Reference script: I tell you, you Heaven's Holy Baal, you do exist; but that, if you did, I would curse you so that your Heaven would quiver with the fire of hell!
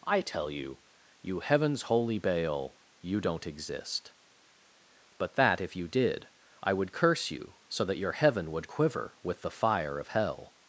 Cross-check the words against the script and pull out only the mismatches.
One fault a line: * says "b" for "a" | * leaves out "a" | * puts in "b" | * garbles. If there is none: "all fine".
* says "don't" for "do"